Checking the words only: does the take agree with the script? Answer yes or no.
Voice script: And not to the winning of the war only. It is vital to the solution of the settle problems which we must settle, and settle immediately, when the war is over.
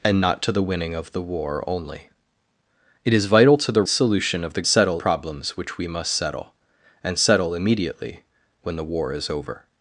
yes